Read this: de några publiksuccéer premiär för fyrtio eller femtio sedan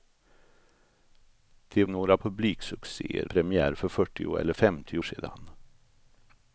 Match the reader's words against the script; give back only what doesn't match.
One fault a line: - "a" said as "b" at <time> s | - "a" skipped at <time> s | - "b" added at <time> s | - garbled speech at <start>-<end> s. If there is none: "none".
none